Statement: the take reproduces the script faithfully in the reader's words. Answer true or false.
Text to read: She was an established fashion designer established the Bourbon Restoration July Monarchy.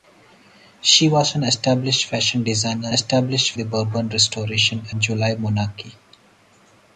true